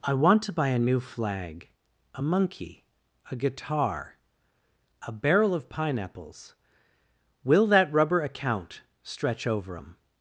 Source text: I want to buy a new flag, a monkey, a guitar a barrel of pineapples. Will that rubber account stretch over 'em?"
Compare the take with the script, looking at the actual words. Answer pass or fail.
pass